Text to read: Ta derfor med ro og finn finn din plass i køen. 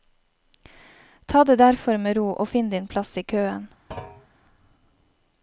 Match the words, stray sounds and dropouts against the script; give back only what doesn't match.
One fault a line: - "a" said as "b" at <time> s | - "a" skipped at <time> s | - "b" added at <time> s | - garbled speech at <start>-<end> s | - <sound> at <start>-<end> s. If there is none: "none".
- "det" added at 1.4 s
- "finn" skipped at 2.7 s
- thud at 3.9-4.3 s